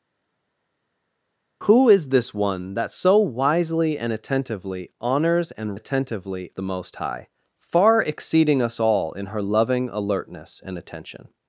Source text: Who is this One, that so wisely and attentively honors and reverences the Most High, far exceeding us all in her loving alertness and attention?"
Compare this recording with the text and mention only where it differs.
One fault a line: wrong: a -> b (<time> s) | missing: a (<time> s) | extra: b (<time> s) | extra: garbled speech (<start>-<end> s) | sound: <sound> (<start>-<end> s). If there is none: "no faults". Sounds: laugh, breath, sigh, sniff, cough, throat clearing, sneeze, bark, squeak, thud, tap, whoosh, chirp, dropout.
wrong: reverences -> attentively (5.7 s)